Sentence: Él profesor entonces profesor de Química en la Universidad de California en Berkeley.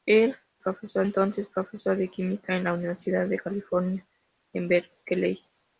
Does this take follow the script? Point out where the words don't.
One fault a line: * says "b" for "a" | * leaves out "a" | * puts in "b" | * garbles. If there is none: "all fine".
all fine